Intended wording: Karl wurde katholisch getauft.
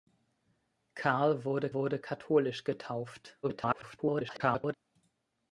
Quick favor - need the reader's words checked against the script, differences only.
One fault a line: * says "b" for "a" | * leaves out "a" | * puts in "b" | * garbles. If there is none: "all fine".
* puts in "wurde"
* garbles